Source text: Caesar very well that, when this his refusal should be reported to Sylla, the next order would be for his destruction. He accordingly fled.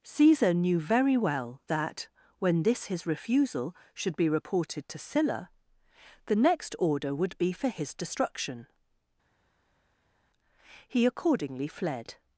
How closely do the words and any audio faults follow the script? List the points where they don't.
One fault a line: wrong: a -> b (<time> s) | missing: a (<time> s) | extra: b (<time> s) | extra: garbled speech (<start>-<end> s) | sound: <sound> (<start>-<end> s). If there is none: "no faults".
extra: knew (0.5 s)